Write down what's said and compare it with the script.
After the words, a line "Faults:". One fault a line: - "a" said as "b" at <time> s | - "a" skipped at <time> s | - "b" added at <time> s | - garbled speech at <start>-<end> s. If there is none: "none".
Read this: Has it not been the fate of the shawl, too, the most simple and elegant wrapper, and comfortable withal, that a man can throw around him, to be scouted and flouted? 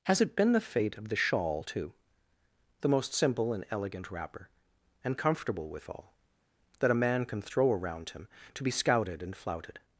Has it been the fate of the shawl, too, the most simple and elegant wrapper, and comfortable withal, that a man can throw around him, to be scouted and flouted?
Faults:
- "not" skipped at 0.3 s